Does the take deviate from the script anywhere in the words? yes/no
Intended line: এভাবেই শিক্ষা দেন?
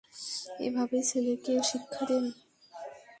yes